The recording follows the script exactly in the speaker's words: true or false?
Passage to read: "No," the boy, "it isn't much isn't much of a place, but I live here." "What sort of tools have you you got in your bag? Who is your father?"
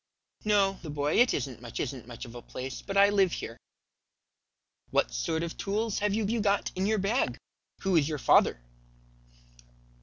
true